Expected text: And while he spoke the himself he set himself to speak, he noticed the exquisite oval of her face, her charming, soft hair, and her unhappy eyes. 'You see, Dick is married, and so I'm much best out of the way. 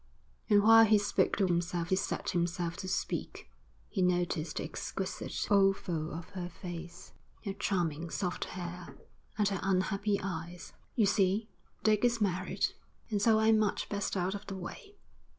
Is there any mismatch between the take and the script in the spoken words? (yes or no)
no